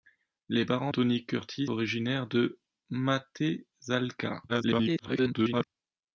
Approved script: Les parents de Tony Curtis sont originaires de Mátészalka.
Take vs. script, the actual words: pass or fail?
fail